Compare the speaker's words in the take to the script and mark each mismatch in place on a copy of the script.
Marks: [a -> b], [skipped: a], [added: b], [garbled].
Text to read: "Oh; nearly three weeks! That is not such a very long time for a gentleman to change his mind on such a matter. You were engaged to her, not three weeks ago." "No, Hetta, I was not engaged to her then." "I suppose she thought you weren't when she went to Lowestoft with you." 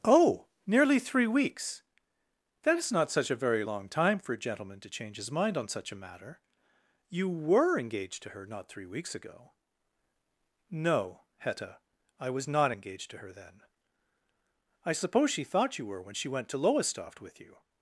"Oh; nearly three weeks! That is not such a very long time for a gentleman to change his mind on such a matter. You were engaged to her, not three weeks ago." "No, Hetta, I was not engaged to her then." "I suppose she thought you [weren't -> were] when she went to Lowestoft with you."